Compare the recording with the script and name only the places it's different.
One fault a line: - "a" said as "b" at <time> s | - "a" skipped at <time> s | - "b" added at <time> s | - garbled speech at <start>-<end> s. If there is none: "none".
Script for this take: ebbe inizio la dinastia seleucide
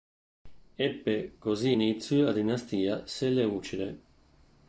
- "così" added at 1.4 s